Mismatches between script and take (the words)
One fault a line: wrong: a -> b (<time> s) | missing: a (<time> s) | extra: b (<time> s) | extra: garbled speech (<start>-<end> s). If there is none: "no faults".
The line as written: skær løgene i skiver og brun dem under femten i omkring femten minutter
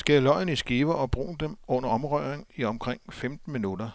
wrong: femten -> omrøring (1.9 s)